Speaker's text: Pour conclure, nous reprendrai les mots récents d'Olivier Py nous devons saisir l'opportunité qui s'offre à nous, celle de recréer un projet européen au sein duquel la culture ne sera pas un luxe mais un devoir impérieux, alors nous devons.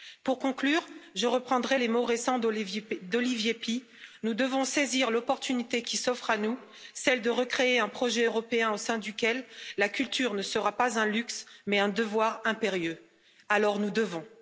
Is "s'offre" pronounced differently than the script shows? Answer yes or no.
no